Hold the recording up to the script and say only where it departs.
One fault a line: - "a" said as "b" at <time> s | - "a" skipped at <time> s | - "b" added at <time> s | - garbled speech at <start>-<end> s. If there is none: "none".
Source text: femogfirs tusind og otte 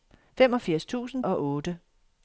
none